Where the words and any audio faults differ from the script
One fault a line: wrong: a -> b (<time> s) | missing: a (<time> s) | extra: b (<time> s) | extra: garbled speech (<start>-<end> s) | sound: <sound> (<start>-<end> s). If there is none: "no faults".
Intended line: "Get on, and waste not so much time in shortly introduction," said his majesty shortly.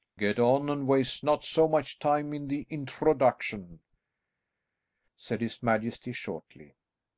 wrong: shortly -> the (2.5 s)